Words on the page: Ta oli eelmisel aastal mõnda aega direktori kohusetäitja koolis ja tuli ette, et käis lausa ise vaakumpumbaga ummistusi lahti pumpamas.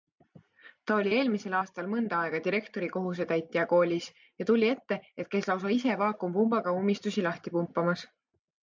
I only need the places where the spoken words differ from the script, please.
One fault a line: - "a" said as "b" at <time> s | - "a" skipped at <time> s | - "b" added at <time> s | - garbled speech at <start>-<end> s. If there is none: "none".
none